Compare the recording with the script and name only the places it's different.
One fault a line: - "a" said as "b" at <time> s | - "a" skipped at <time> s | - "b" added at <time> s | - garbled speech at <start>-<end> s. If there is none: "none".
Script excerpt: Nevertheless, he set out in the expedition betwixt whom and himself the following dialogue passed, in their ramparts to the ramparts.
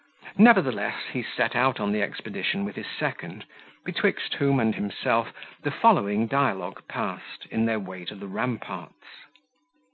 - "in" said as "on" at 1.8 s
- "with his second" added at 2.6 s
- "ramparts" said as "way" at 7.8 s